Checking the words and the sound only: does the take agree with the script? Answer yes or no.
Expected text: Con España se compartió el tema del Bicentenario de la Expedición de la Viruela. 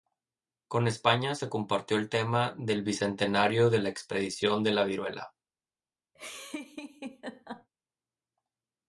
no